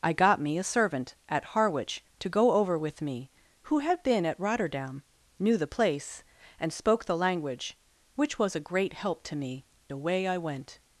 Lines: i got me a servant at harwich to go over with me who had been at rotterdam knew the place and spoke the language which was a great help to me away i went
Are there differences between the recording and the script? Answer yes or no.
no